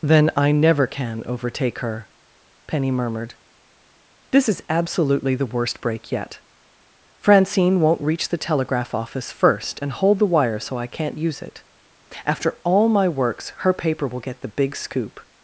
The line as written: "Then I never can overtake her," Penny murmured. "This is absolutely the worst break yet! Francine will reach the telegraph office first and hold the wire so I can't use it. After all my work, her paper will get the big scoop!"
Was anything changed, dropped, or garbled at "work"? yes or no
yes